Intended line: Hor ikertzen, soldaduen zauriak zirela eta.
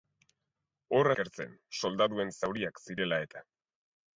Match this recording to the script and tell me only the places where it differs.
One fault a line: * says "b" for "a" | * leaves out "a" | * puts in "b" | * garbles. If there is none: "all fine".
all fine